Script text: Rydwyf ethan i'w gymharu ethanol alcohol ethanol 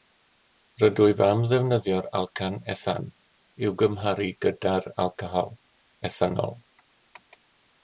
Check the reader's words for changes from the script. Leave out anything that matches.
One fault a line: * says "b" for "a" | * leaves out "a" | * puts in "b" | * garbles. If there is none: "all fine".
* puts in "am ddefnyddio'r alcan"
* says "gyda'r" for "ethanol"